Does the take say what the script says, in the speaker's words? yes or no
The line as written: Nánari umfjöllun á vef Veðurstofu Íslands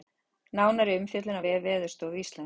yes